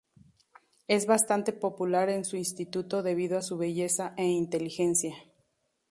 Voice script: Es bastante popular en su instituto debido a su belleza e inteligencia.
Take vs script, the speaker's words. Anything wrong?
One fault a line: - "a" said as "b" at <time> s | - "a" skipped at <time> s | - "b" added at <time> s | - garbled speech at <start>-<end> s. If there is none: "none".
none